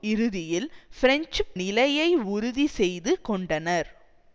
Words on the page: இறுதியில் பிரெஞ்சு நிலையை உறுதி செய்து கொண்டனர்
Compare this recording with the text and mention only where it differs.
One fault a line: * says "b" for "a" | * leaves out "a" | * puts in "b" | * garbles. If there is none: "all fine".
all fine